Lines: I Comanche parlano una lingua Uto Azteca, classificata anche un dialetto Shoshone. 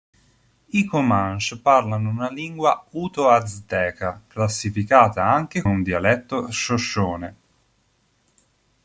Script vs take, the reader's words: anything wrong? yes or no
no